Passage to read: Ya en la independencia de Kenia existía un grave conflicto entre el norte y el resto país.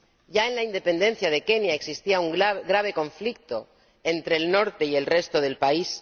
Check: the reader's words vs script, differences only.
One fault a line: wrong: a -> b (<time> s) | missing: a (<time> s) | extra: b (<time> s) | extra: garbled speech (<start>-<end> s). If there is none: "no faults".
extra: del (5.4 s)